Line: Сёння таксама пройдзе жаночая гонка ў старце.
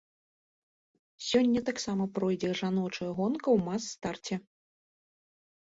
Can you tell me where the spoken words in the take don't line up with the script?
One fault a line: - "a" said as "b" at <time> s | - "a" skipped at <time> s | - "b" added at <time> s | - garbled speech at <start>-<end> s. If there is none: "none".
- "мас" added at 3.7 s